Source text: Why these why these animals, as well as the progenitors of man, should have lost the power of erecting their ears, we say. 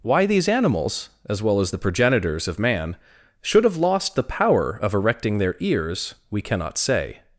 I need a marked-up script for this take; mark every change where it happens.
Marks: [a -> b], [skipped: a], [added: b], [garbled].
Why these [skipped: why these] animals, as well as the progenitors of man, should have lost the power of erecting their ears, we [added: cannot] say.